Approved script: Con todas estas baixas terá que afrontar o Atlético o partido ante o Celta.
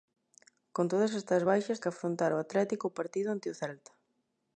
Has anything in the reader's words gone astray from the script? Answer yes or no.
yes